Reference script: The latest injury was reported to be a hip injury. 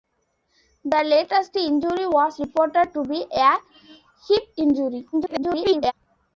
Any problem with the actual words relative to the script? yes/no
yes